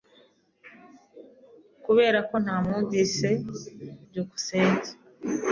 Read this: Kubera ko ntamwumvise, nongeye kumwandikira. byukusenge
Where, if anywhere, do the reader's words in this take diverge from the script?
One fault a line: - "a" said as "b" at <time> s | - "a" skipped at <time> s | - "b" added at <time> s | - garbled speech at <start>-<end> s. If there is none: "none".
- "nongeye kumwandikira" skipped at 3.3 s